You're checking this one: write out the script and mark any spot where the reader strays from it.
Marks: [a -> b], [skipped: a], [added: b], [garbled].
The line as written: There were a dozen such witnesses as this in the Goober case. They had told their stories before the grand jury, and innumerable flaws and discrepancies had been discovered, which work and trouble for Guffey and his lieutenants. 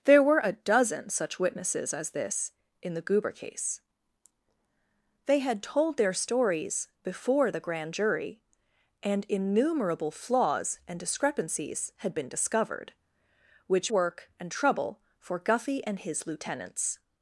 There were a dozen such witnesses as this in the Goober case. They had told their stories before the grand jury, and innumerable flaws and discrepancies had been discovered, which work and trouble for Guffey and his lieutenants.